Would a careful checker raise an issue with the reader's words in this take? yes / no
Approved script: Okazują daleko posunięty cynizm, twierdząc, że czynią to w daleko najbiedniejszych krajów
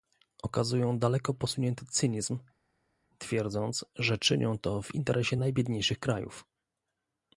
yes